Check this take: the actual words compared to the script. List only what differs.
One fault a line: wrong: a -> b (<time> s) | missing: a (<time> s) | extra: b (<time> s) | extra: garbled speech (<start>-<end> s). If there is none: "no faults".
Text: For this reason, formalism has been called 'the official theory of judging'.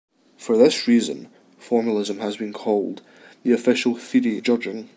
missing: of (4.4 s)